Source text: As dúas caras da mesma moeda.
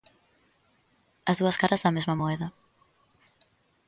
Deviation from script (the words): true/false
false